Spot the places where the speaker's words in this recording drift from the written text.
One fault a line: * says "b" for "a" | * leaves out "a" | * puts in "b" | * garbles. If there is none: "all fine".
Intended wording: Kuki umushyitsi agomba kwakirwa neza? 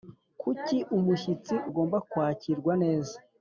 all fine